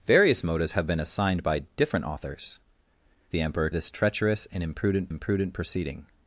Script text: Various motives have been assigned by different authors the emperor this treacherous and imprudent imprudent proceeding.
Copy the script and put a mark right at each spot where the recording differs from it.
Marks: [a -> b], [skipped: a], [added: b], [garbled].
Various motives have been assigned by different authors the emperor this treacherous and imprudent imprudent proceeding.